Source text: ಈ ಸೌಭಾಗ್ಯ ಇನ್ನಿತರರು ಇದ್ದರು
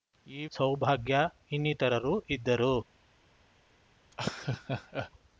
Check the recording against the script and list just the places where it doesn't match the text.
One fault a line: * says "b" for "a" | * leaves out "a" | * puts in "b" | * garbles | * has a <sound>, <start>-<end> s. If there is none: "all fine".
* has a laugh, 4.1-5.1 s